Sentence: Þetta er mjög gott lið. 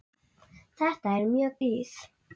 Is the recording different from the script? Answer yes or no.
yes